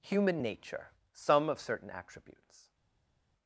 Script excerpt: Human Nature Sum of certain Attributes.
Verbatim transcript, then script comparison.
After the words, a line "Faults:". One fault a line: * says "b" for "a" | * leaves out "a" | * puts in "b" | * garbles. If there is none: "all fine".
Human Nature Sum of certain Attributes.
Faults:
all fine